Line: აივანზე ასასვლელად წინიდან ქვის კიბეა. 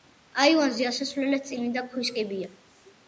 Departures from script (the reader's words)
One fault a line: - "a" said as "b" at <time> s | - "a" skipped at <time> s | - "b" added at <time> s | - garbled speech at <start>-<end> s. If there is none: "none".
none